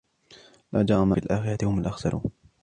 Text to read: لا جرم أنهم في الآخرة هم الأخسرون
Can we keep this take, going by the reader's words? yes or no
no